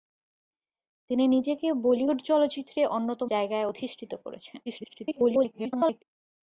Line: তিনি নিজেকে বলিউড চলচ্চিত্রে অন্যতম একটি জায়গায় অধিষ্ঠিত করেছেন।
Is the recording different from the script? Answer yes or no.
yes